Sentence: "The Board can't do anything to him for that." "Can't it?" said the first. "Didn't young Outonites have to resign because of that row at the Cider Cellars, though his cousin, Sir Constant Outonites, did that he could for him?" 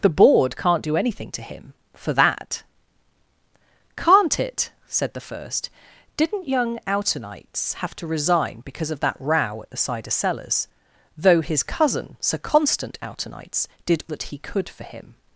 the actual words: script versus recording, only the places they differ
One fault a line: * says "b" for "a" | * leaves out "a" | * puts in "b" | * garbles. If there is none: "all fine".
all fine